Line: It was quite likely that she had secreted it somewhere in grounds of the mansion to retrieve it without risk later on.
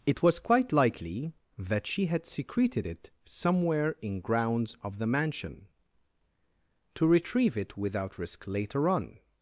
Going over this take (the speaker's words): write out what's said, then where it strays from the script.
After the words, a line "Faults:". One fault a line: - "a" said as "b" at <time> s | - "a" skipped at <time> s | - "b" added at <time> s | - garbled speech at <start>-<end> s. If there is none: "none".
It was quite likely that she had secreted it somewhere in grounds of the mansion to retrieve it without risk later on.
Faults:
none